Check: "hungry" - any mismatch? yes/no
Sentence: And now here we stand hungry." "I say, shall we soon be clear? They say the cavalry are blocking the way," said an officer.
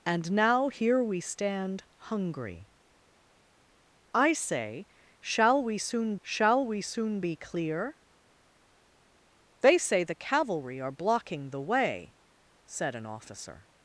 no